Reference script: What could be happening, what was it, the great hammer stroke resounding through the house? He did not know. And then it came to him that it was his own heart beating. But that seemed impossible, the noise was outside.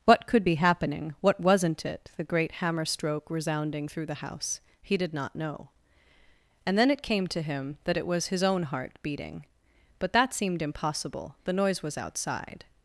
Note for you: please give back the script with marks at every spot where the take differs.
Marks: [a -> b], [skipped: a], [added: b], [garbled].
What could be happening, what [was -> wasn't] it, the great hammer stroke resounding through the house? He did not know. And then it came to him that it was his own heart beating. But that seemed impossible, the noise was outside.